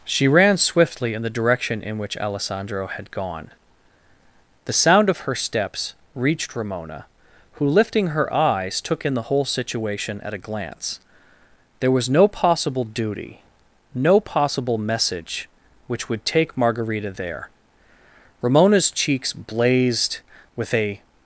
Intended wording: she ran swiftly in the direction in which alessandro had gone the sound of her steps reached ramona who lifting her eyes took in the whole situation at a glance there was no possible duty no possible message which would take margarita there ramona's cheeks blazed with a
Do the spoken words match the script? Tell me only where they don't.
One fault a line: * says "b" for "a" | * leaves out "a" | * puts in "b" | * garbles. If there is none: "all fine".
all fine